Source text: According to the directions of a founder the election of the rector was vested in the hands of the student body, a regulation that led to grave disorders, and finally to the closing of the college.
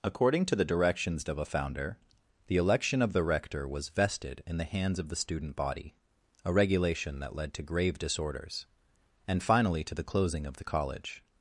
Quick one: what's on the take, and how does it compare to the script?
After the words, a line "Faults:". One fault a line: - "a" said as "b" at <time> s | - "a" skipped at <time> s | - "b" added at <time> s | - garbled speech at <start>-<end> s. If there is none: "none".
According to the directions of a founder the election of the rector was vested in the hands of the student body, a regulation that led to grave disorders, and finally to the closing of the college.
Faults:
none